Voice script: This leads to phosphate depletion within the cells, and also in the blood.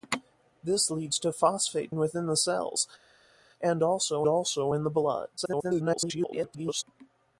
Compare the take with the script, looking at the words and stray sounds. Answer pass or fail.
fail